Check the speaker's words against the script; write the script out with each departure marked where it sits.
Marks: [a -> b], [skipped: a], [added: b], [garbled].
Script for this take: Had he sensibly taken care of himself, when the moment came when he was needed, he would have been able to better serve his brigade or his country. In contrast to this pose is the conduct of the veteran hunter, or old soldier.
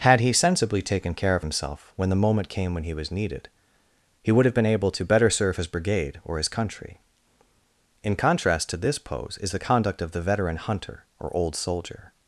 Had he sensibly taken care of himself, when the moment came when he was needed, he would have been able to better serve his brigade or his country. In contrast to this pose is the conduct of the veteran hunter, or old soldier.